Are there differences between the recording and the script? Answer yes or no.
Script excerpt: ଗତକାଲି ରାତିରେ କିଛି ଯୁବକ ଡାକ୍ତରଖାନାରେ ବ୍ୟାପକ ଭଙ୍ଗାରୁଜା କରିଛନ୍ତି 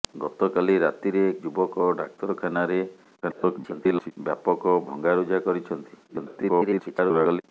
yes